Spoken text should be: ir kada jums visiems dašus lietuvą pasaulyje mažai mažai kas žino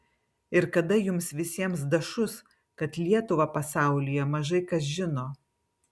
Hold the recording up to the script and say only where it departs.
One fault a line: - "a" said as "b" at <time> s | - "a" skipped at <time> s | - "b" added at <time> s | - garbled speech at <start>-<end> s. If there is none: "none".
- "kad" added at 2.8 s
- "mažai" skipped at 4.7 s